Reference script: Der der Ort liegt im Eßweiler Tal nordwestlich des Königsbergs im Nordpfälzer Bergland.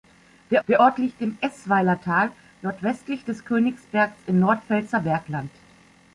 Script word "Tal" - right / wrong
right